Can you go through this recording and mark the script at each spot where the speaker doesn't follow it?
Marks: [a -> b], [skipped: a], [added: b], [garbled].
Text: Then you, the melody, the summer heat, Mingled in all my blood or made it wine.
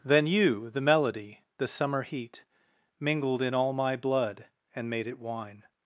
Then you, the melody, the summer heat, Mingled in all my blood [or -> and] made it wine.